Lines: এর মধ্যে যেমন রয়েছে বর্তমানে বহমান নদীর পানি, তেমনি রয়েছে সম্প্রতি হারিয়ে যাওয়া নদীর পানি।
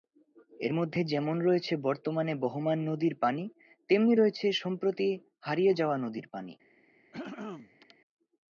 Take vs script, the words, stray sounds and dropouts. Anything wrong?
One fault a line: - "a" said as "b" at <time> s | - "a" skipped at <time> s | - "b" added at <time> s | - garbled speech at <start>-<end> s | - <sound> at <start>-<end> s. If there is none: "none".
- throat clearing at 7.1-8.0 s